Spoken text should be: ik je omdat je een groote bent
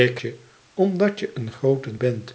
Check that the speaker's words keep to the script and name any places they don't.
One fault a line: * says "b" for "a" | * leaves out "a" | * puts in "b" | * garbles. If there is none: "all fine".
all fine